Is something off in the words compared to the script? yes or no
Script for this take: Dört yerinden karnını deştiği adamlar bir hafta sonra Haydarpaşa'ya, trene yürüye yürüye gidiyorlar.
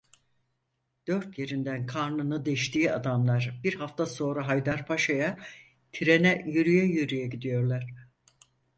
no